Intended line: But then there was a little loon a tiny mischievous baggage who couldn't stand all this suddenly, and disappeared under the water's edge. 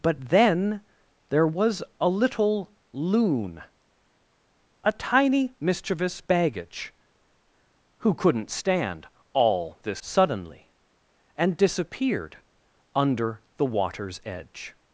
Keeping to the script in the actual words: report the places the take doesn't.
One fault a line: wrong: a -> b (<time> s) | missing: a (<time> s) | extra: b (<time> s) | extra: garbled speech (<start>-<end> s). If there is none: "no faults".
no faults